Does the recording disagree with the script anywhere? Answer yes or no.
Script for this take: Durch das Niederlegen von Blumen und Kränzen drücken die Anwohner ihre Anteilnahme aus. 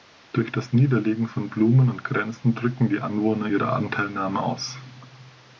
no